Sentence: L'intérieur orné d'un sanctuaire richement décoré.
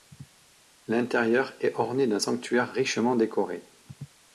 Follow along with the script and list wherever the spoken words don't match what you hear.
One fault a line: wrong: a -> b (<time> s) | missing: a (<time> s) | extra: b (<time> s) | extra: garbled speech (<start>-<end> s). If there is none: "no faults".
extra: est (1.6 s)